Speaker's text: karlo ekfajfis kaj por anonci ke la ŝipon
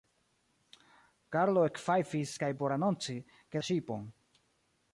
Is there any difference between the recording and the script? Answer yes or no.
no